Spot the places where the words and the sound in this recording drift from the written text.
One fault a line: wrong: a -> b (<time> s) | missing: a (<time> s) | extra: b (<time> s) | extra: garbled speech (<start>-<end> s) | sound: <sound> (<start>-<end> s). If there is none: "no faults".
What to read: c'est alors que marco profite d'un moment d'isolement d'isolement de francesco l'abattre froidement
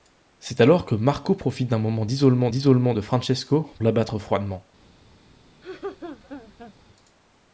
sound: laugh (5.6-6.7 s)